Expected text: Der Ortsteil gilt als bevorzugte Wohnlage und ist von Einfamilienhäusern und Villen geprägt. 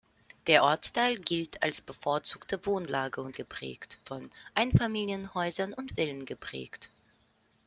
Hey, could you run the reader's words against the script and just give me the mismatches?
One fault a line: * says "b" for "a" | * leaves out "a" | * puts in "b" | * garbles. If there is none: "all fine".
* says "geprägt" for "ist"